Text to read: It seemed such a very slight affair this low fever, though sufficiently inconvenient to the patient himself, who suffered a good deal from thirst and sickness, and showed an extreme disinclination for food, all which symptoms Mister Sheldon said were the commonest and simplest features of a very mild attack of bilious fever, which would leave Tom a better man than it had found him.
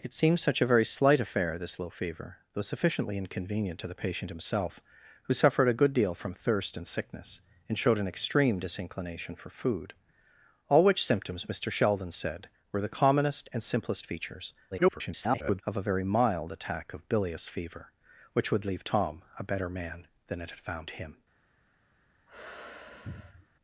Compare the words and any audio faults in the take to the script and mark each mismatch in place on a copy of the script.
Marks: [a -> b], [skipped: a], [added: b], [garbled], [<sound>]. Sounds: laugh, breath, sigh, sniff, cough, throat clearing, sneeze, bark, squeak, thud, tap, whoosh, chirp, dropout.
It seemed such a very slight affair this low fever, though sufficiently inconvenient to the patient himself, who suffered a good deal from thirst and sickness, and showed an extreme disinclination for food, all which symptoms Mister Sheldon said were the commonest and simplest features [garbled] of a very mild attack of bilious fever, which would leave Tom a better man than it had found him. [sneeze]